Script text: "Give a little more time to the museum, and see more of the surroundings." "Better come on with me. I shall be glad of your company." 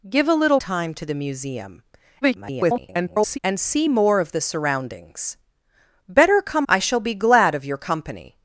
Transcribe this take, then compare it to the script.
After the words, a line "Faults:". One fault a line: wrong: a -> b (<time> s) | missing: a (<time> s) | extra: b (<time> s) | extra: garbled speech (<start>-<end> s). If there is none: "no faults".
"Give a little time to the museum, [garbled] and see more of the surroundings." "Better come. I shall be glad of your company."
Faults:
missing: more (0.6 s)
extra: garbled speech (2.2-3.4 s)
missing: on with me (6.7 s)